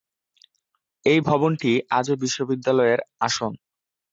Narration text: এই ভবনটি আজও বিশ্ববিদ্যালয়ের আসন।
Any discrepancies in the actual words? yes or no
no